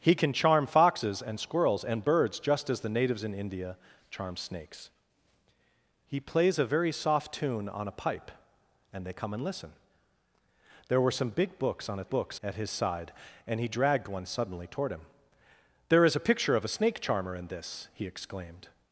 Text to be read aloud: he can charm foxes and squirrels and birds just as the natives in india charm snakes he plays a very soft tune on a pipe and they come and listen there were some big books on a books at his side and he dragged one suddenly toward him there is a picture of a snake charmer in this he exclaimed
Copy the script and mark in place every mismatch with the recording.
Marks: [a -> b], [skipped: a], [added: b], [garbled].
he can charm foxes and squirrels and birds just as the natives in india charm snakes he plays a very soft tune on a pipe and they come and listen there were some big books on a books at his side and he dragged one suddenly toward him there is a picture of a snake charmer in this he exclaimed